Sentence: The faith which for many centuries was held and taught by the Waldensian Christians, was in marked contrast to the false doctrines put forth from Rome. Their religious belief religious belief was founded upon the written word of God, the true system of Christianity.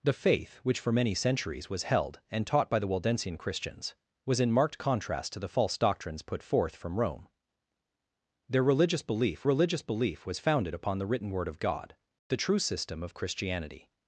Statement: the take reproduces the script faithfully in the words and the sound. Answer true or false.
true